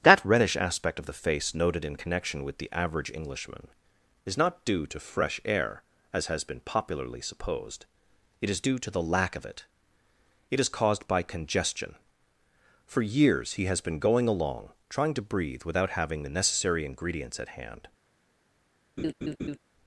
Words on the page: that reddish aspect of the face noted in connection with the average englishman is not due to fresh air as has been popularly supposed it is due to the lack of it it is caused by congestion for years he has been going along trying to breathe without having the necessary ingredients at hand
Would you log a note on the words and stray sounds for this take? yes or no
yes